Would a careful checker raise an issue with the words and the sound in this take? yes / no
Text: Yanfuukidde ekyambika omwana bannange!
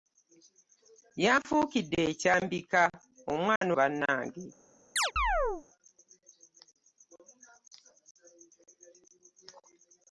yes